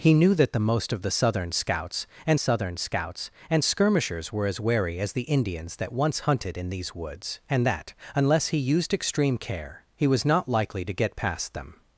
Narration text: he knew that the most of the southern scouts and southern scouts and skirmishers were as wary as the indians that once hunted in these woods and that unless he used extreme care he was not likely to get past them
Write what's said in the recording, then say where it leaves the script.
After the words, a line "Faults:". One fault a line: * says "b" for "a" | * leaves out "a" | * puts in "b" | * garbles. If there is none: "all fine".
he knew that the most of the southern scouts and southern scouts and skirmishers were as wary as the indians that once hunted in these woods and that unless he used extreme care he was not likely to get past them
Faults:
all fine